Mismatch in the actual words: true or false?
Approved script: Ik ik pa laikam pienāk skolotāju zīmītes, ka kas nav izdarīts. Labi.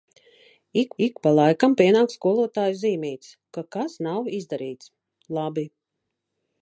false